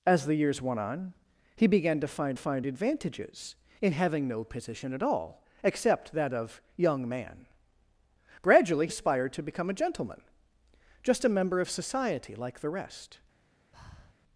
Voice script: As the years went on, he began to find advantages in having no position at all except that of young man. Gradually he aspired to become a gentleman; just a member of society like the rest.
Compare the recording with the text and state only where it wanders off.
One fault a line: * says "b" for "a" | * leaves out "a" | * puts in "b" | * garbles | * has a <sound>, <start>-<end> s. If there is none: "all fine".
* puts in "find"
* leaves out "he"
* has a breath, 13.7-14.1 s